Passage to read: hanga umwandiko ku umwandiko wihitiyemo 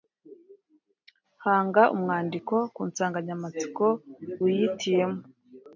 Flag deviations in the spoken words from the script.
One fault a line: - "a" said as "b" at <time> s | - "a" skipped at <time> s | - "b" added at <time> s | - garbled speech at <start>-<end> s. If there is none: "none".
- "umwandiko" said as "nsanganyamatsiko" at 2.9 s